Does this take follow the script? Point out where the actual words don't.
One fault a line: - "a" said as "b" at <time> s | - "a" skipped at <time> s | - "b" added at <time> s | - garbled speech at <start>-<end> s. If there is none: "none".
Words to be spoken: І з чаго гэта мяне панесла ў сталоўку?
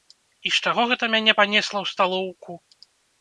none